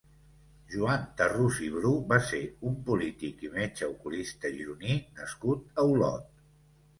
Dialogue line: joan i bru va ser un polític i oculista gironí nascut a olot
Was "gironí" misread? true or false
false